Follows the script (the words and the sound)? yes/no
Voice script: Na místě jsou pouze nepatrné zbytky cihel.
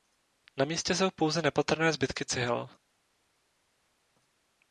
yes